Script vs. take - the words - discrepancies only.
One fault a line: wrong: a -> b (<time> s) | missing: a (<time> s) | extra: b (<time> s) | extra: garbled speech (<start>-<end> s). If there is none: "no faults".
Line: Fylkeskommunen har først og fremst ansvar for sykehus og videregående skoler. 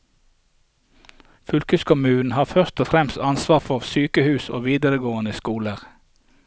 no faults